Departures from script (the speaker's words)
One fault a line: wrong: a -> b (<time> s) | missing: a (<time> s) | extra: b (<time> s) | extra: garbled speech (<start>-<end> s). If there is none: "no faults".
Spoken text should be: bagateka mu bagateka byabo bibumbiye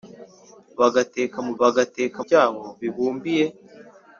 no faults